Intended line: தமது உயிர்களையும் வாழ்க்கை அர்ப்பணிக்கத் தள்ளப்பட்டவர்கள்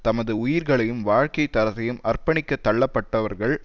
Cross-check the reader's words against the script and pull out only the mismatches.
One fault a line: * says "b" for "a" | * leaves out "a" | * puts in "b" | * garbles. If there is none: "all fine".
* puts in "தரத்தையும்"